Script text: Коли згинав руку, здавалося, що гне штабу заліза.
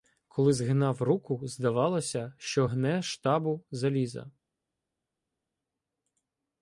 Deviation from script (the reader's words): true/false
false